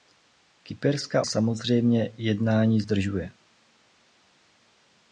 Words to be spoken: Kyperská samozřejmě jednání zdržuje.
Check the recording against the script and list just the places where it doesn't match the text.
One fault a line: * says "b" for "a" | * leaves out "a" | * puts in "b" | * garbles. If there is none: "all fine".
all fine